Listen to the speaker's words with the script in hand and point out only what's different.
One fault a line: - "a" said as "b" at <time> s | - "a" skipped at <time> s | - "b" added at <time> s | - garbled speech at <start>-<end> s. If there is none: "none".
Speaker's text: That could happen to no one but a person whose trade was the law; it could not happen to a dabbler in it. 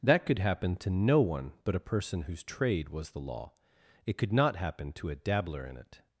none